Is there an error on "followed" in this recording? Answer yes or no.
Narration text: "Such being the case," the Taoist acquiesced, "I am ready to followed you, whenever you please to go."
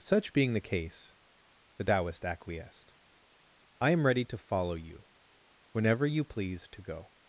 yes